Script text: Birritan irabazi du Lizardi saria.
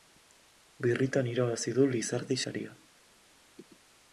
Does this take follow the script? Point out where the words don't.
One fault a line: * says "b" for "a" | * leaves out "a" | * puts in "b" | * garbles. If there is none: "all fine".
all fine